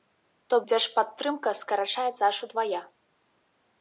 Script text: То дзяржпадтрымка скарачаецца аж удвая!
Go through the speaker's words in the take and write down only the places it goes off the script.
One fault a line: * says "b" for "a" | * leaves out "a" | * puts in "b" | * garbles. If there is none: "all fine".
all fine